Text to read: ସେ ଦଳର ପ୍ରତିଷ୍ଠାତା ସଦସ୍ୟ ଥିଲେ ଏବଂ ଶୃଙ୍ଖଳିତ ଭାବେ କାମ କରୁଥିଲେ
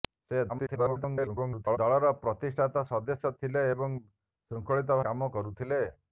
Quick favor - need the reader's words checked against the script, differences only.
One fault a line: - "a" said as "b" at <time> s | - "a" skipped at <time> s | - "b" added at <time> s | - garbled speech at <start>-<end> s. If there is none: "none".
- garbled speech at 0.5-1.8 s
- "ଭାବେ" skipped at 5.0 s